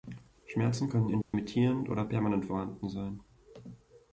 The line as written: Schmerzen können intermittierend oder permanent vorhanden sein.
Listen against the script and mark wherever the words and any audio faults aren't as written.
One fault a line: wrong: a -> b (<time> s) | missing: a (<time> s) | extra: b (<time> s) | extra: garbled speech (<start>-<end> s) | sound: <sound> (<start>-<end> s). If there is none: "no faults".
sound: dropout (1.2-1.3 s)